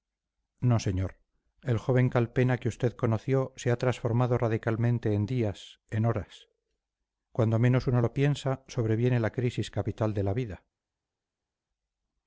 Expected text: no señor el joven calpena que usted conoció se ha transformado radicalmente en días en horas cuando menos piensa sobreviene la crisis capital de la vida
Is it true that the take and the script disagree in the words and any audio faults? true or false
true